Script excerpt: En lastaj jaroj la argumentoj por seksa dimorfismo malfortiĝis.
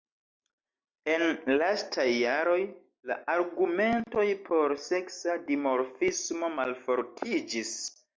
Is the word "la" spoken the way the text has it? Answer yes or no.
yes